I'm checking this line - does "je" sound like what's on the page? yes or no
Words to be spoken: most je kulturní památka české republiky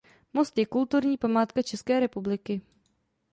yes